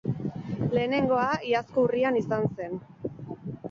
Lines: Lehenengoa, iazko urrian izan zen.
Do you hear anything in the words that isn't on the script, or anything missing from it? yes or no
no